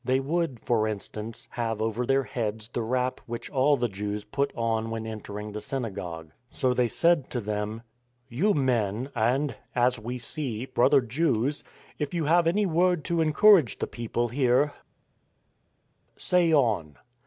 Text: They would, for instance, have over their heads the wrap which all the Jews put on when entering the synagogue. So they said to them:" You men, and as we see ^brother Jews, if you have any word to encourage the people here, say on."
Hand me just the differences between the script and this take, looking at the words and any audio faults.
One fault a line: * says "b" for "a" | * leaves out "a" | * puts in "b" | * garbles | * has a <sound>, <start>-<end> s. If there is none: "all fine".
all fine